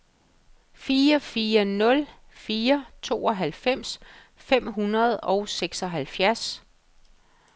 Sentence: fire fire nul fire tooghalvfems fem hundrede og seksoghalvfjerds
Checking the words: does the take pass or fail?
pass